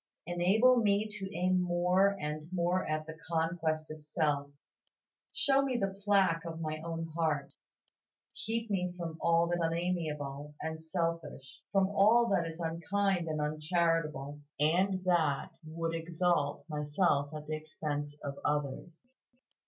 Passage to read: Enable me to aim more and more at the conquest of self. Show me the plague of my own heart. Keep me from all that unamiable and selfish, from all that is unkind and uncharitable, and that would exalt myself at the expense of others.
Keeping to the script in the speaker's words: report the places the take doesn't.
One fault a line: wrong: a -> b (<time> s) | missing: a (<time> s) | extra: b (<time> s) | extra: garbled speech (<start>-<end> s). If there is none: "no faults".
no faults